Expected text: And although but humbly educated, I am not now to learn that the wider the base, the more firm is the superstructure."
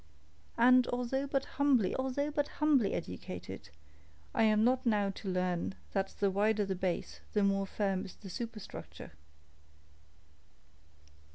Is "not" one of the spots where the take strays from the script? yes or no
no